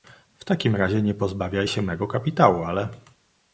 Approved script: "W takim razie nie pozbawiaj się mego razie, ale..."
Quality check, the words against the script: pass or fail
fail